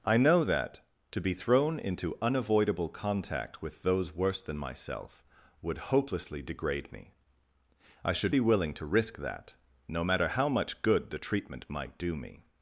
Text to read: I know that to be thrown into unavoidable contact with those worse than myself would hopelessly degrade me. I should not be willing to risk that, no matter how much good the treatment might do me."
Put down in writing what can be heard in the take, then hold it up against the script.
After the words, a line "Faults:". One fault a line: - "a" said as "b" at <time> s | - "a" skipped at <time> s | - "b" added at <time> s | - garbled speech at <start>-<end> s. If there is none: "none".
I know that to be thrown into unavoidable contact with those worse than myself would hopelessly degrade me. I should be willing to risk that, no matter how much good the treatment might do me."
Faults:
- "not" skipped at 8.3 s